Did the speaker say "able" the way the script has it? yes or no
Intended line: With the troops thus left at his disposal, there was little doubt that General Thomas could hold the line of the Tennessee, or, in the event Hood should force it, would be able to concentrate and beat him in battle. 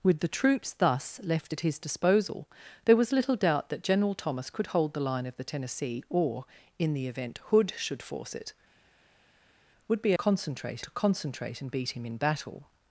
no